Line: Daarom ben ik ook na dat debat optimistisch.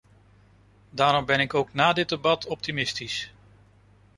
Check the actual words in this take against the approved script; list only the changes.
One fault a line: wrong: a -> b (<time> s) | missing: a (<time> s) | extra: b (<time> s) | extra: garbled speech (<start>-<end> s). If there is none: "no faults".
wrong: dat -> dit (1.9 s)